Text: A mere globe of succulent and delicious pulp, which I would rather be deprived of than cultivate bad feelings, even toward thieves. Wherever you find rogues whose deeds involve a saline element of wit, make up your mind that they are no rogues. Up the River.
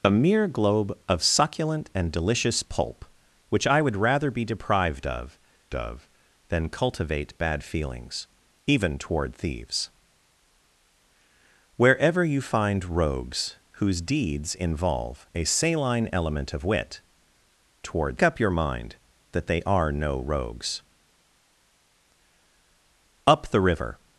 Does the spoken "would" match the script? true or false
true